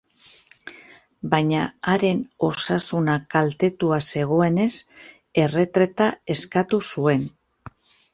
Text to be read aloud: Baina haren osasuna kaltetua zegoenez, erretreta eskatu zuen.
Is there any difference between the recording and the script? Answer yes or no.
no